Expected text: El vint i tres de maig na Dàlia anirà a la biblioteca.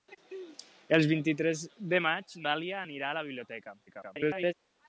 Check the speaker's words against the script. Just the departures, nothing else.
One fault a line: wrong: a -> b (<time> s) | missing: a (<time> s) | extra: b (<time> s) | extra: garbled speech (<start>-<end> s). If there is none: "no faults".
missing: na (2.4 s)
extra: garbled speech (3.9-4.5 s)